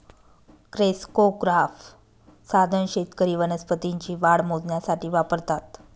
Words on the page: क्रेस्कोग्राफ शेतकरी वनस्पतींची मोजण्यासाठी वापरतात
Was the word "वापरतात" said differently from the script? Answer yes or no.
no